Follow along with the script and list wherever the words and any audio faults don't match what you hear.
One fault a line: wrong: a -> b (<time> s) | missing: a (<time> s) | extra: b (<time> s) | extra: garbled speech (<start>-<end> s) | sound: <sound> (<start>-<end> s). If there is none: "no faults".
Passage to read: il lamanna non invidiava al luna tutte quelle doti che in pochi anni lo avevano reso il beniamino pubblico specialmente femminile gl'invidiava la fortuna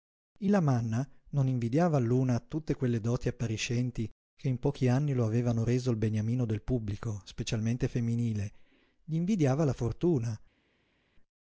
extra: appariscenti (3.3 s)
extra: del (6.5 s)